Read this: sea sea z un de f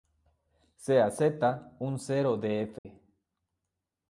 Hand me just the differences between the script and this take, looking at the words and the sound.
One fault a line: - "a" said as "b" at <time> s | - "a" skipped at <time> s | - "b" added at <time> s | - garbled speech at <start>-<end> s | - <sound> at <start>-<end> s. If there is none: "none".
- "sea" skipped at 1.1 s
- "cero" added at 2.0 s
- dropout at 2.8-2.8 s